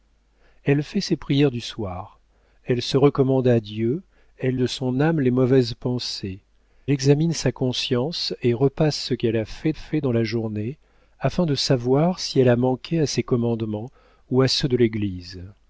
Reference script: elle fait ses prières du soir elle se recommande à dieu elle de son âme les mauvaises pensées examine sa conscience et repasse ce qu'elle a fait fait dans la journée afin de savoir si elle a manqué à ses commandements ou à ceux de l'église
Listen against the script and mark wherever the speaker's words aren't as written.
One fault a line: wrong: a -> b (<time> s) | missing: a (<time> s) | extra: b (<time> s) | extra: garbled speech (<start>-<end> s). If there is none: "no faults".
no faults